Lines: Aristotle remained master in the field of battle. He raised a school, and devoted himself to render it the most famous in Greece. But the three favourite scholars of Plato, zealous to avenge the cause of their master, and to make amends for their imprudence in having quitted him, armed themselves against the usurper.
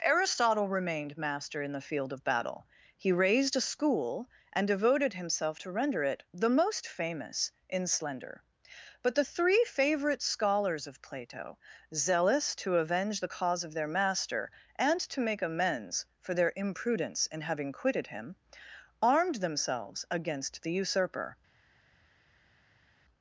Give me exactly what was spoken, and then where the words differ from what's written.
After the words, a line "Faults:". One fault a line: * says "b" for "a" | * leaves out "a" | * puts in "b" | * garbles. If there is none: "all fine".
Aristotle remained master in the field of battle. He raised a school, and devoted himself to render it the most famous in Slender. But the three favourite scholars of Plato, zealous to avenge the cause of their master, and to make amends for their imprudence in having quitted him, armed themselves against the usurper.
Faults:
* says "Slender" for "Greece"